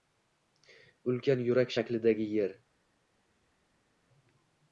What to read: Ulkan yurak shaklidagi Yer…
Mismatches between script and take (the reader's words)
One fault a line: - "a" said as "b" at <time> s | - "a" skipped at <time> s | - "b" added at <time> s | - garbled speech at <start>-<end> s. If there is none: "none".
none